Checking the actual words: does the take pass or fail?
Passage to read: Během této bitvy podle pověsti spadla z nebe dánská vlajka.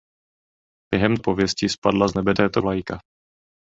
fail